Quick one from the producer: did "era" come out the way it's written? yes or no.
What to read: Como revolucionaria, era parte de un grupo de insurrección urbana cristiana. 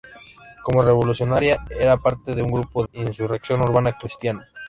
yes